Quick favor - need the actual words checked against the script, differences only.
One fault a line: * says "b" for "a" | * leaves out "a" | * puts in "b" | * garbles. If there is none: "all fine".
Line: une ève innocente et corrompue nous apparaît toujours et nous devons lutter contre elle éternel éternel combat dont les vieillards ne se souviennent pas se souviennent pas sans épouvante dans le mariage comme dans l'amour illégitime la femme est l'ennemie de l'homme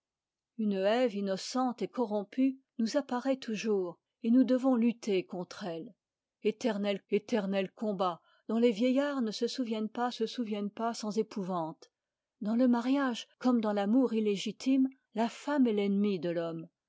all fine